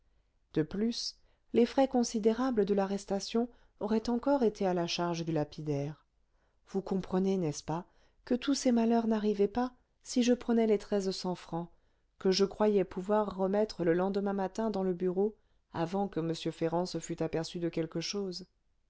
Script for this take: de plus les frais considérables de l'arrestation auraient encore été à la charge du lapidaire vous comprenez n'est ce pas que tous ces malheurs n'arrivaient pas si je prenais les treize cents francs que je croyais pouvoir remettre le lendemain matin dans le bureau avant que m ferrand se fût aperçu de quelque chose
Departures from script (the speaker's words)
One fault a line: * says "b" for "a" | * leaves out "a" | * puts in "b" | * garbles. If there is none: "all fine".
all fine